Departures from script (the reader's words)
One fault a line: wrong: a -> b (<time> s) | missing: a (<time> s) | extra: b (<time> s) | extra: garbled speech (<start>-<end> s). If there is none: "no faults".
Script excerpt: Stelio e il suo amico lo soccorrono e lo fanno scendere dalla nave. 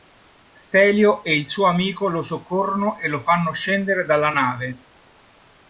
no faults